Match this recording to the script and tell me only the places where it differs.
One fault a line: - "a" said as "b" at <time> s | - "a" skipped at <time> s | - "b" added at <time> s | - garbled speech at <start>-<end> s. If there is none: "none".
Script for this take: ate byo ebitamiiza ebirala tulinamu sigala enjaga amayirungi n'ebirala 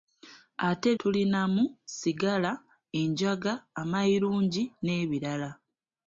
- "byo ebitamiiza ebirala" skipped at 0.9 s